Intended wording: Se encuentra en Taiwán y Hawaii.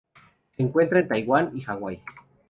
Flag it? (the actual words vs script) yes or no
no